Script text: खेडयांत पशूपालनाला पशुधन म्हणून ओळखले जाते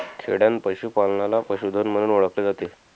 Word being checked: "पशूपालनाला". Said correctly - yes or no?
yes